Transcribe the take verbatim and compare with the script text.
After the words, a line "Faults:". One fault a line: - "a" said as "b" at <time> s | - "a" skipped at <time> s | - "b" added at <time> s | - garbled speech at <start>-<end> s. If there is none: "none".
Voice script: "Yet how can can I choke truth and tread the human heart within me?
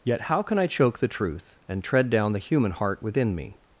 "Yet how can I choke the truth and tread down the human heart within me?
Faults:
- "can" skipped at 0.6 s
- "the" added at 1.0 s
- "down" added at 2.1 s